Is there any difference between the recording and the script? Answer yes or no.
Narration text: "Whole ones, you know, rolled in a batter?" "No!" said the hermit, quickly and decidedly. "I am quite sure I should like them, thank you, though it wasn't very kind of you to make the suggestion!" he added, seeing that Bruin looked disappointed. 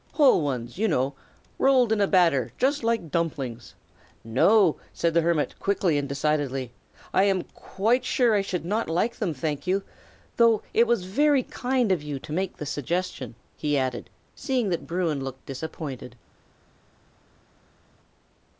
yes